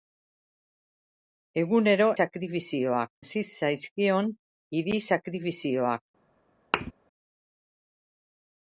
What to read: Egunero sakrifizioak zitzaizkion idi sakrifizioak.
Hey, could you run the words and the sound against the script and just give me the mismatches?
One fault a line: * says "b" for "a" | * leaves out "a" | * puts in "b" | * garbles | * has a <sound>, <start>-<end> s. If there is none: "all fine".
* has a thud, 6.7-6.9 s